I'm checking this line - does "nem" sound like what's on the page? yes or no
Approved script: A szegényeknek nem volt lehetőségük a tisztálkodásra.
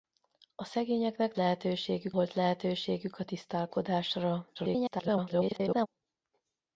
no